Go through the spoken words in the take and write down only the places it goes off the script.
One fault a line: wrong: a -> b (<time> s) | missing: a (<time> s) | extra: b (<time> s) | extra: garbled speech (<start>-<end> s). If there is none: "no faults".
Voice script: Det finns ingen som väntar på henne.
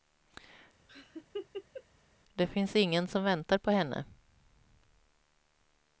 no faults